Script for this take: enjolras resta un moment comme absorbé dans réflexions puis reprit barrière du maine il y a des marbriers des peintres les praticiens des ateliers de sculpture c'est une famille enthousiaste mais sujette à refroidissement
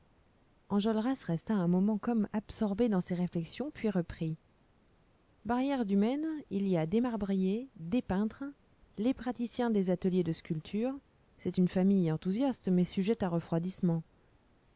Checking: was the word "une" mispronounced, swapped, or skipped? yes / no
no